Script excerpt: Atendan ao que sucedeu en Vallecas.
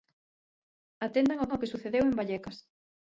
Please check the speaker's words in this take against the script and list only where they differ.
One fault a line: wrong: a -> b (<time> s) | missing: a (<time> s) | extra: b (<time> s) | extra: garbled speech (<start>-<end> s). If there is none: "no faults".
extra: ao (1.5 s)